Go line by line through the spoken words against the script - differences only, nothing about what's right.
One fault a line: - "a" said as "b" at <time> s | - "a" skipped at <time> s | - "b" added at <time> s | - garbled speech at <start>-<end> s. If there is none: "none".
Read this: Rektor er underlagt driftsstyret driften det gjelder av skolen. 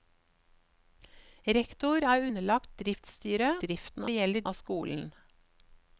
none